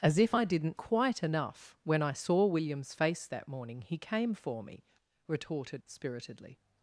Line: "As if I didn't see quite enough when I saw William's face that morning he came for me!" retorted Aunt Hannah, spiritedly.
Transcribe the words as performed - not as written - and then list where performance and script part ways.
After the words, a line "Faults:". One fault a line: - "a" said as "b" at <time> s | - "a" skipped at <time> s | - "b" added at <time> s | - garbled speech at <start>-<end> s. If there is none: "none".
"As if I didn't quite enough when I saw William's face that morning he came for me!" retorted Spiritedly.
Faults:
- "see" skipped at 0.8 s
- "Aunt Hannah" skipped at 5.8 s